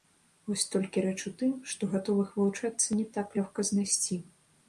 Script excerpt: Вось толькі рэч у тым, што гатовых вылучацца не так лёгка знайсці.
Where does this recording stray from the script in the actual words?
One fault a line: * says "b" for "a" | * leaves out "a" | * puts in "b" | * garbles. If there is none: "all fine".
all fine